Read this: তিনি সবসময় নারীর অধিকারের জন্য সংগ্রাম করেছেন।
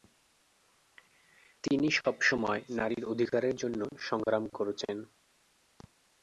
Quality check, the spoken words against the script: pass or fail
pass